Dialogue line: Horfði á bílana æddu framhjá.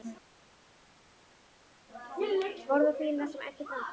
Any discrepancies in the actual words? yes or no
yes